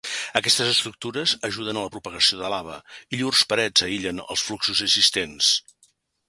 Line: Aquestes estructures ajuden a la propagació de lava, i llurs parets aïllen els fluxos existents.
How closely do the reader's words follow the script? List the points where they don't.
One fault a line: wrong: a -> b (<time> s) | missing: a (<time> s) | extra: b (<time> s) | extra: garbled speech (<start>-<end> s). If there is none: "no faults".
no faults